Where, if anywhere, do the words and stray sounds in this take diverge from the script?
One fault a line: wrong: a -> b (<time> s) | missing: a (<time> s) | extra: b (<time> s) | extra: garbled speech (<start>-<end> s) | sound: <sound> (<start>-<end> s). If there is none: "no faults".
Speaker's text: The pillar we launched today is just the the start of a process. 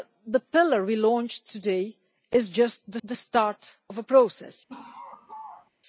sound: laugh (4.7-5.7 s)